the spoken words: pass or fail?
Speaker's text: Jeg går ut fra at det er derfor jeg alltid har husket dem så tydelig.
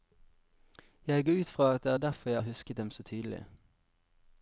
fail